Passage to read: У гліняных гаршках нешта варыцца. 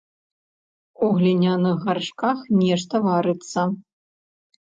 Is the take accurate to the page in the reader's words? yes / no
yes